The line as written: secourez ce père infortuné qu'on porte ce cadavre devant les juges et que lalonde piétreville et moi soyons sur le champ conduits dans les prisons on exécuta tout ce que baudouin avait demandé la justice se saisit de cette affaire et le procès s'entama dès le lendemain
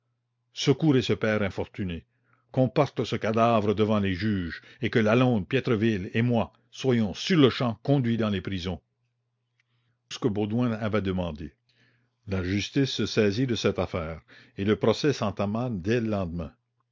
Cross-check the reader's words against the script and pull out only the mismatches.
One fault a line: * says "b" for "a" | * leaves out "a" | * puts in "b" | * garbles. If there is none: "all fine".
* leaves out "on exécuta tout"